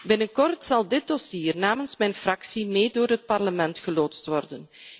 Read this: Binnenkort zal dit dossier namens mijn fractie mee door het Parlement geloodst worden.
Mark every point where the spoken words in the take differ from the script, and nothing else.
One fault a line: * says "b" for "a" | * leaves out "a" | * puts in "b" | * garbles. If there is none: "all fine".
all fine